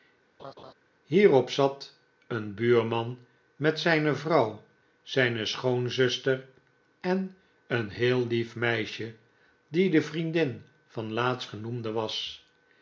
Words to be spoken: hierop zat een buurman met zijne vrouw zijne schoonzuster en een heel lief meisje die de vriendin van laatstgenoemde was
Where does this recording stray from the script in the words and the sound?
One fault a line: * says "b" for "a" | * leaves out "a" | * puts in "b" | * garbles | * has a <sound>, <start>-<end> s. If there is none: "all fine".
* has a laugh, 0.4-0.7 s